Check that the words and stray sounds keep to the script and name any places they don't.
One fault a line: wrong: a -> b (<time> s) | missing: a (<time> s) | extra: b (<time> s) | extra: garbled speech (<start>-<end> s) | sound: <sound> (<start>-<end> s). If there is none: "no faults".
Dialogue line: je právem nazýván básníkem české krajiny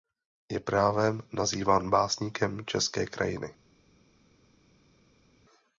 no faults